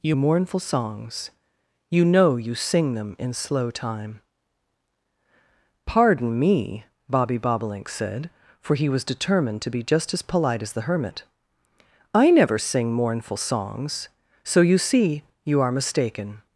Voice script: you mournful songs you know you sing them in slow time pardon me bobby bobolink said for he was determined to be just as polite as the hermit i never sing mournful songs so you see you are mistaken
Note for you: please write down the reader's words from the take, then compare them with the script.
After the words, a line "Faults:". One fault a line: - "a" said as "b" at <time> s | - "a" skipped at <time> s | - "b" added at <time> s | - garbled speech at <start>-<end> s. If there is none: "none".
you mournful songs you know you sing them in slow time pardon me bobby bobolink said for he was determined to be just as polite as the hermit i never sing mournful songs so you see you are mistaken
Faults:
none